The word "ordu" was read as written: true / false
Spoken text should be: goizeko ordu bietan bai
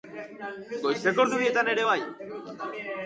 true